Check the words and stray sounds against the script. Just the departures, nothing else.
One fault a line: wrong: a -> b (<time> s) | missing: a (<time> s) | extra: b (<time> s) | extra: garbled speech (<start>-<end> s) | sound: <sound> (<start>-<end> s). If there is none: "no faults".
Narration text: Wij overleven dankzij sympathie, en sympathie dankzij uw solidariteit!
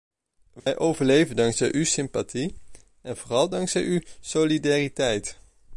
sound: dropout (0.6-0.7 s)
extra: uw (1.7 s)
wrong: sympathie -> vooral (3.2 s)